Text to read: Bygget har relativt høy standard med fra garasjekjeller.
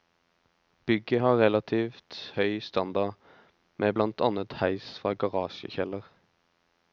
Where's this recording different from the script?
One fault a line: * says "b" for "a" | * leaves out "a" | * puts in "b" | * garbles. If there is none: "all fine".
* puts in "blant annet heis"